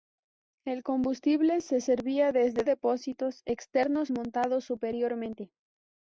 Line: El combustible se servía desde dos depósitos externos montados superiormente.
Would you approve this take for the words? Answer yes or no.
no